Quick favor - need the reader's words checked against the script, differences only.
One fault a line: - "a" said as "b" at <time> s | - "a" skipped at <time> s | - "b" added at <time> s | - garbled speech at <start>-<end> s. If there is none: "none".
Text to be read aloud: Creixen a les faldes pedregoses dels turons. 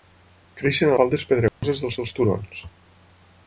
- "les" skipped at 0.9 s
- "dels" added at 2.0 s